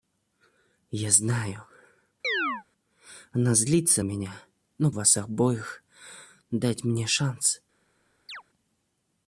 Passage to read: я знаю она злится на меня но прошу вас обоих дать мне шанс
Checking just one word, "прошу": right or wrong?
wrong